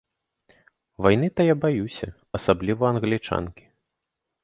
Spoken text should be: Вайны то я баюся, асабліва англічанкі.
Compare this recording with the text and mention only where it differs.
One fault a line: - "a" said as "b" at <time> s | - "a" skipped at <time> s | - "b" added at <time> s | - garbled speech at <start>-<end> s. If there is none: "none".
none